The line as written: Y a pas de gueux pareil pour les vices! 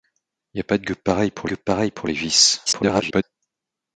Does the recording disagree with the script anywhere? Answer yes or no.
yes